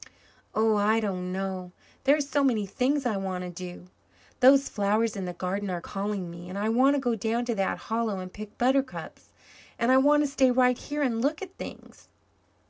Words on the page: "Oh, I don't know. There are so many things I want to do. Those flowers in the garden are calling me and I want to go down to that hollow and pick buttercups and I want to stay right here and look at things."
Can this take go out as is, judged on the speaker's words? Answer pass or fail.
pass